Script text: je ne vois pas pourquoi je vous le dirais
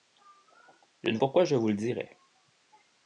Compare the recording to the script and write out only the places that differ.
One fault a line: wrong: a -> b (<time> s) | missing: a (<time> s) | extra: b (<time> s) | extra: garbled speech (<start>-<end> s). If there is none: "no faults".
missing: vois pas (1.2 s)